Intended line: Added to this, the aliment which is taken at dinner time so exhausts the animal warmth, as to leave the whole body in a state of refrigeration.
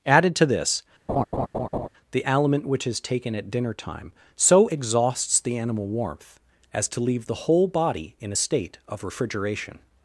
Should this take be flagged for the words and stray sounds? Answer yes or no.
yes